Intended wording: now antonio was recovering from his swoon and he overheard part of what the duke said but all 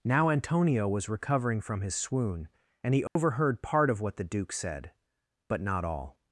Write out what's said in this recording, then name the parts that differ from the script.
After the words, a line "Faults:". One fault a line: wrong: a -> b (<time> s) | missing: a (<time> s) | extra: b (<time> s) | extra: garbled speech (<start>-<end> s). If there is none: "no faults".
now antonio was recovering from his swoon and he overheard part of what the duke said but not all
Faults:
extra: not (5.6 s)